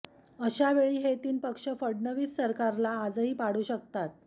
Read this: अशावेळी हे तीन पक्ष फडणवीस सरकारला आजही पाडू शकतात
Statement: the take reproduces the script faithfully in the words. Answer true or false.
true